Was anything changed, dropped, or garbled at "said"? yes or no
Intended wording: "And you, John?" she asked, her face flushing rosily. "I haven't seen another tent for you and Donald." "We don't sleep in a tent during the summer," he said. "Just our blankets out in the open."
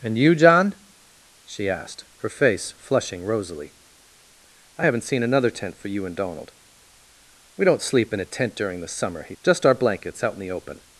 yes